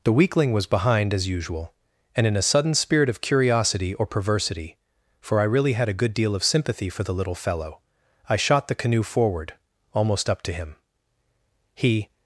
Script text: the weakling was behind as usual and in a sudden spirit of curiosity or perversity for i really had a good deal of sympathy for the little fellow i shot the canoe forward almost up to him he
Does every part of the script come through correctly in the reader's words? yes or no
yes